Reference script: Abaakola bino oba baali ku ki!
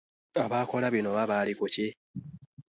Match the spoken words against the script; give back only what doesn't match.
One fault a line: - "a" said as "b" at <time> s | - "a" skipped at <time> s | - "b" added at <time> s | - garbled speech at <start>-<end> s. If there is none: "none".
none